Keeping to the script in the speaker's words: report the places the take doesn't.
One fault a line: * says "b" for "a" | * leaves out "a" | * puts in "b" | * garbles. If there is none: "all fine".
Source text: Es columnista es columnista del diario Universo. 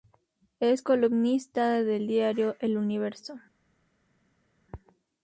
* leaves out "es columnista"
* puts in "El"